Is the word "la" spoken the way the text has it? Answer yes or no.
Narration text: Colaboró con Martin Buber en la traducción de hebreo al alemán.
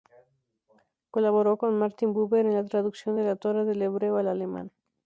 yes